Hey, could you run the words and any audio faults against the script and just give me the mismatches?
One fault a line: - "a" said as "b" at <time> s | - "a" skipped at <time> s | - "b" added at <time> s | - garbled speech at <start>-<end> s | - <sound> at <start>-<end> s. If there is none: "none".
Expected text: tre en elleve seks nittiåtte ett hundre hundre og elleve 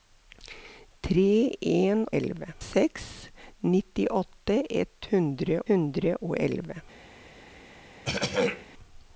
- throat clearing at 8.0-8.7 s